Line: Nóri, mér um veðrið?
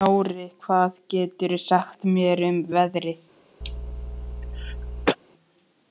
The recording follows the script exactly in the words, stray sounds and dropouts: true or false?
false